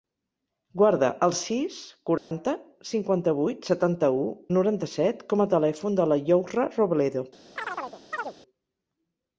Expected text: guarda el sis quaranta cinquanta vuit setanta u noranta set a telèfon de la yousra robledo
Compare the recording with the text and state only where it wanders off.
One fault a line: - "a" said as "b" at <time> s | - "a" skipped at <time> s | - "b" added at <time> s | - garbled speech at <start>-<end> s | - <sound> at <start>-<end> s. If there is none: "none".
- dropout at 2.2-2.3 s
- "com" added at 5.3 s
- chirp at 7.6-8.3 s